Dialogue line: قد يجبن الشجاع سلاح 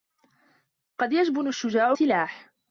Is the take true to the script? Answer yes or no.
yes